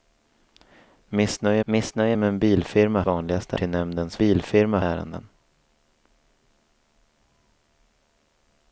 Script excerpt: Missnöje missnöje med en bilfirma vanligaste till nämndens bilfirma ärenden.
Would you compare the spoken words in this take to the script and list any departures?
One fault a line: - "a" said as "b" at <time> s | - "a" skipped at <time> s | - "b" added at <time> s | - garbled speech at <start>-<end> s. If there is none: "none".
none